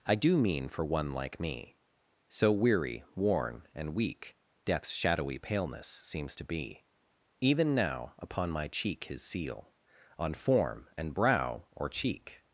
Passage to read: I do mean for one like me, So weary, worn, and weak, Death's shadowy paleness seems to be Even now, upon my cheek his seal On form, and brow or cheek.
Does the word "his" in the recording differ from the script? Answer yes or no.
no